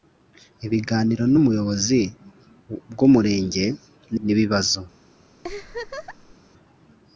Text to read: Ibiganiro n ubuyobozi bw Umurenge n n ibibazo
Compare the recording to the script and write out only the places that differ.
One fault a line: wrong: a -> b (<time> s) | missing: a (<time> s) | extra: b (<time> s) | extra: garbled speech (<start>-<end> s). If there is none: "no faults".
no faults